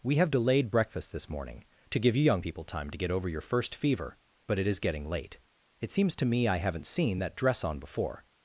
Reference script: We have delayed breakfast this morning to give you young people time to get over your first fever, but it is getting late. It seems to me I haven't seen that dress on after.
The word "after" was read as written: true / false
false